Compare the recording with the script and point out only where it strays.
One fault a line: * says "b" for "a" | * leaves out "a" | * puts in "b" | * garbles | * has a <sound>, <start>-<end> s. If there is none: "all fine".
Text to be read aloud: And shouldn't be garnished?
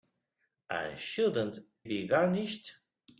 all fine